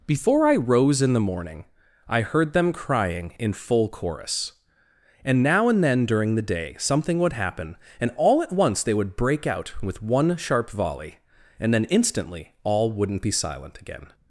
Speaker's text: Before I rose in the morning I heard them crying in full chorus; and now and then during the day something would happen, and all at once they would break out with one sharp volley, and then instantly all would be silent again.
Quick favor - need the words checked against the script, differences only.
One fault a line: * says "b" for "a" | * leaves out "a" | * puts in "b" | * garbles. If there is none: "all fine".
* says "wouldn't" for "would"